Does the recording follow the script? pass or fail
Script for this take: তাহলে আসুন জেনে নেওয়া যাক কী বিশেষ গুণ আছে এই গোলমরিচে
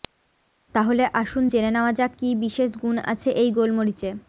pass